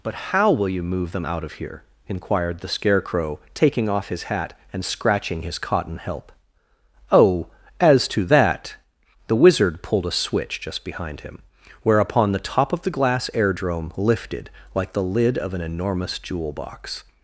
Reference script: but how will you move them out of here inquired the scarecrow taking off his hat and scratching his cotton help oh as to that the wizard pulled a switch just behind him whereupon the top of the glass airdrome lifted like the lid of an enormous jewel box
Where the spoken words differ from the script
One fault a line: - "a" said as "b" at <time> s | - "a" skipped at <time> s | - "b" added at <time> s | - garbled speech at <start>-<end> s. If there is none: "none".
none